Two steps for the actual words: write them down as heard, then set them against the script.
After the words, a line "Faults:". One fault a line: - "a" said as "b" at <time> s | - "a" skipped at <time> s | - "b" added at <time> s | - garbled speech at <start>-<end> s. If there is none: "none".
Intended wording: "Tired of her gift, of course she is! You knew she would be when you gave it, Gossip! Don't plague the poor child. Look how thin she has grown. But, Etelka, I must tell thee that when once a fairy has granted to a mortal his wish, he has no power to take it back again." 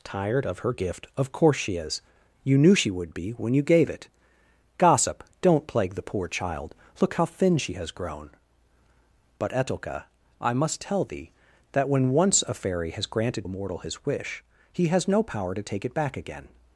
"Tired of her gift, of course she is! You knew she would be when you gave it, Gossip! Don't plague the poor child. Look how thin she has grown. But, Etelka, I must tell thee that when once a fairy has granted a mortal his wish, he has no power to take it back again."
Faults:
- "to" skipped at 13.4 s